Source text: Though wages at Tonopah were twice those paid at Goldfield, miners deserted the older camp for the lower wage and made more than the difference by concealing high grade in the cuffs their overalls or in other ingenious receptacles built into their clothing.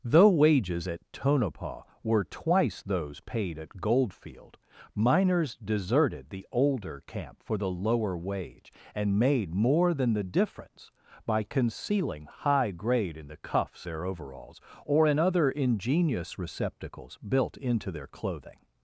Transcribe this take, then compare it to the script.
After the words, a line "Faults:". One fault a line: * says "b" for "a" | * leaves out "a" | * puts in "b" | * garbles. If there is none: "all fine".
Though wages at Tonopah were twice those paid at Goldfield, miners deserted the older camp for the lower wage and made more than the difference by concealing high grade in the cuffs their overalls or in other ingenious receptacles built into their clothing.
Faults:
all fine